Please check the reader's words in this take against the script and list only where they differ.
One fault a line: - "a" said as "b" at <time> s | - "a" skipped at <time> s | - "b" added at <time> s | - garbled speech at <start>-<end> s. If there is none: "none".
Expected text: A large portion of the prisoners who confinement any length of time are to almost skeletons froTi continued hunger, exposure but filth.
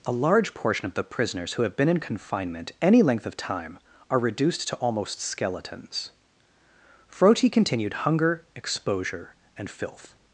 - "have been in" added at 1.6 s
- "reduced" added at 4.2 s
- "but" said as "and" at 9.6 s